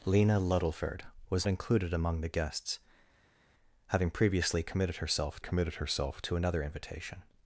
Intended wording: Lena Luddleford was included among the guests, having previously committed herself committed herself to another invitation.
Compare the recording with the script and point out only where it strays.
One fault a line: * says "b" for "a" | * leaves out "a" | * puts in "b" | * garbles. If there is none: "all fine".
all fine